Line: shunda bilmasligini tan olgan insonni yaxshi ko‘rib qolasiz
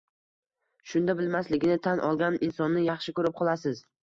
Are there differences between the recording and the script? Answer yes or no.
no